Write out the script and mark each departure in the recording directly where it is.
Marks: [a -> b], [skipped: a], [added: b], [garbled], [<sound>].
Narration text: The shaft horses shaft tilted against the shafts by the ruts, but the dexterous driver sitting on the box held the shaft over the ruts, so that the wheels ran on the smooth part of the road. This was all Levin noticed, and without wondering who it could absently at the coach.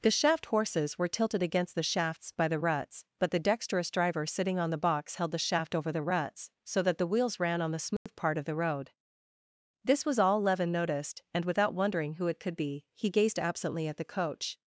The shaft horses [shaft -> were] tilted against the shafts by the ruts, but the dexterous driver sitting on the box held the shaft over the ruts, so that the wheels ran on the smooth [dropout] part of the road. This was all Levin noticed, and without wondering who it could [added: be he gazed] absently at the coach.